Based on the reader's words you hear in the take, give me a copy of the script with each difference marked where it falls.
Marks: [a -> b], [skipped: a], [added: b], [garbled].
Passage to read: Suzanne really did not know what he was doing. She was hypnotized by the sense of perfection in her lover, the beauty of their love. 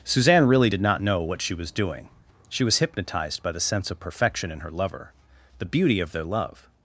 Suzanne really did not know what [he -> she] was doing. She was hypnotized by the sense of perfection in her lover, the beauty of their love.